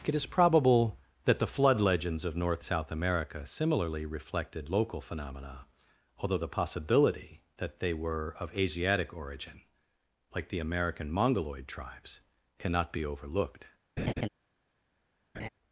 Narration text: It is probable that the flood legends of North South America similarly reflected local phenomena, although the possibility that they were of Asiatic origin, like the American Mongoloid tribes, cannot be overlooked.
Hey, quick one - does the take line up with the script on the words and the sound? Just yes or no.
no